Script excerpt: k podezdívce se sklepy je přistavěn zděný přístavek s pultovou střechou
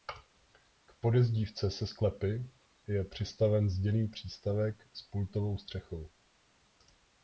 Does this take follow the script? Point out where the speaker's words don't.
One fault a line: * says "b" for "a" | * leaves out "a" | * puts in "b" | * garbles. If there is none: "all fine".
all fine